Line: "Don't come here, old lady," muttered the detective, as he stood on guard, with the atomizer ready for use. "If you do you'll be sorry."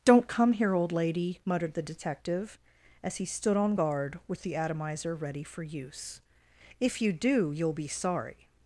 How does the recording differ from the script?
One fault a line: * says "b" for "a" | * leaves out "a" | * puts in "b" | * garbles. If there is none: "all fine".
all fine